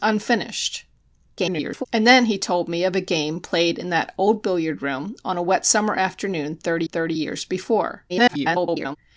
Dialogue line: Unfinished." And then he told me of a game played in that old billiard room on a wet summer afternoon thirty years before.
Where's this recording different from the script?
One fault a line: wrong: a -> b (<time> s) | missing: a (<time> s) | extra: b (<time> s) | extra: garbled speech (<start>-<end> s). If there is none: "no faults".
extra: garbled speech (1.4-1.9 s)
extra: thirty (6.8 s)
extra: garbled speech (8.1-9.0 s)